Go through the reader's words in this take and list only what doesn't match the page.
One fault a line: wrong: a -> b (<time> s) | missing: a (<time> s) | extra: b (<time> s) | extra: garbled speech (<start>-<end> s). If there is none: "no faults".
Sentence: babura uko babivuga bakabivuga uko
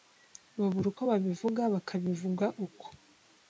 no faults